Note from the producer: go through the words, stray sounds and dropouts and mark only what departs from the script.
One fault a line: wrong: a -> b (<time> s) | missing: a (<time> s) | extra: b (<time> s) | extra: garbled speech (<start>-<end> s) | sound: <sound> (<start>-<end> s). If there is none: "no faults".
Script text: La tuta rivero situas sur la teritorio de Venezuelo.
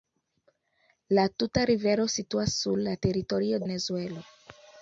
missing: de (3.6 s)